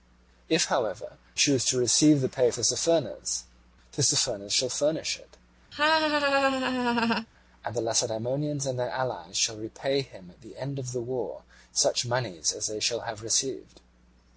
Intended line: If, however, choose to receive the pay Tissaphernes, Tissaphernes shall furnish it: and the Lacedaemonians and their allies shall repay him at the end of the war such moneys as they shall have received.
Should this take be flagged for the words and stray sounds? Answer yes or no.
yes